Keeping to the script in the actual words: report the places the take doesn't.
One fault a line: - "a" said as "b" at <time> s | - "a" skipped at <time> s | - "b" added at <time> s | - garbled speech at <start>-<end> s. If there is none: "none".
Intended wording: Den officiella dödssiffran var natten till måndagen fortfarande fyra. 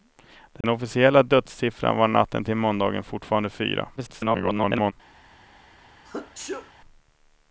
- garbled speech at 4.0-4.9 s